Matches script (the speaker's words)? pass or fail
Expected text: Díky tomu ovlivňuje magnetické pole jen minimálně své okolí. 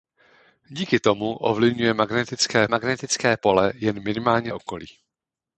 fail